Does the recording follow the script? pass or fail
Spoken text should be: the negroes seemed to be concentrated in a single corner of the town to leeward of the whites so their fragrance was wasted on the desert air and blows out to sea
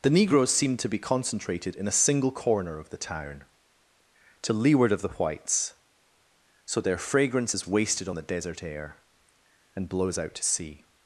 fail